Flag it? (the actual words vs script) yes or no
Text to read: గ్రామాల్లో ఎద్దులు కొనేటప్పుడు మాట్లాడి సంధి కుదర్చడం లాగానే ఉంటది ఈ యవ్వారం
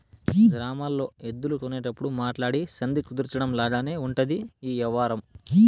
no